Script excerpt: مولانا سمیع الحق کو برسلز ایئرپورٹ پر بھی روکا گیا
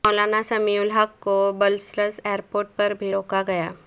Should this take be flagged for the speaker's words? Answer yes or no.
no